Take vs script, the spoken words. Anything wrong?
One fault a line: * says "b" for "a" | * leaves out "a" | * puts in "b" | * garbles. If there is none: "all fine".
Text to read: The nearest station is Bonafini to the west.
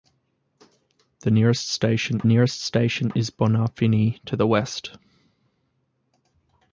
* puts in "nearest station"